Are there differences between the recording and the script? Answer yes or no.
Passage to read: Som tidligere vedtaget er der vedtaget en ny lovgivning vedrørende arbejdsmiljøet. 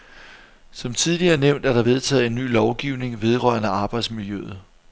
yes